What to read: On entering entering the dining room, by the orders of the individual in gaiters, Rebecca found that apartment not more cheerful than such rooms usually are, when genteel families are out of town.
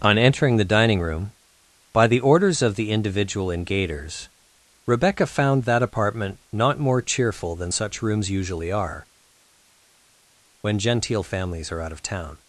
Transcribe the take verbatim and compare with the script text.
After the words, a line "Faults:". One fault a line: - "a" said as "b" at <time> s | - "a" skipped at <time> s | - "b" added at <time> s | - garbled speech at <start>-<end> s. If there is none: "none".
On entering the dining room, by the orders of the individual in gaiters, Rebecca found that apartment not more cheerful than such rooms usually are, when genteel families are out of town.
Faults:
- "entering" skipped at 0.6 s